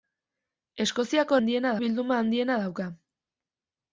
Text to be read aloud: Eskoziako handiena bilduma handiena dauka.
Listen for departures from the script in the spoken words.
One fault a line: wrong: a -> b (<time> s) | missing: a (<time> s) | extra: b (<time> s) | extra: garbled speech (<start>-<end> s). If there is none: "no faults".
no faults